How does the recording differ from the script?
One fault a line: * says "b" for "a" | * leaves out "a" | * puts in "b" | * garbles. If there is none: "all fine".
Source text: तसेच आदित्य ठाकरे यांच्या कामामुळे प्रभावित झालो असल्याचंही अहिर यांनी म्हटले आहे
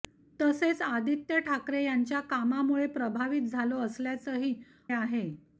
* leaves out "अहिर यांनी म्हटले"